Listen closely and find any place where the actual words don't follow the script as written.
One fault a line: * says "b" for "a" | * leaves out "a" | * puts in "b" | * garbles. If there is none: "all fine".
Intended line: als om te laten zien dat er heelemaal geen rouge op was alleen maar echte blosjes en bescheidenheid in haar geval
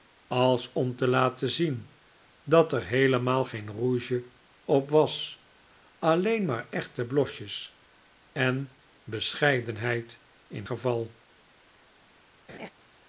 * leaves out "haar"